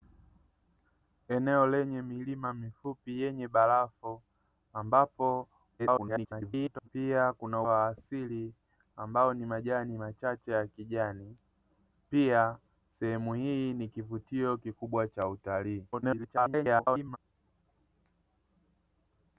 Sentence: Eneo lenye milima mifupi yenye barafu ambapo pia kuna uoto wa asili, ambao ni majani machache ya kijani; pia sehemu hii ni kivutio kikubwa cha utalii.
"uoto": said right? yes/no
no